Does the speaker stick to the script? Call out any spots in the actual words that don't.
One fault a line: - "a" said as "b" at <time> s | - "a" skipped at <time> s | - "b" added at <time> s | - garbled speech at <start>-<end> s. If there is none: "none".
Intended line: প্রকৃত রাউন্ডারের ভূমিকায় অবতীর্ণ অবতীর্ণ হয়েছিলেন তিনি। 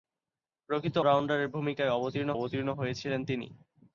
none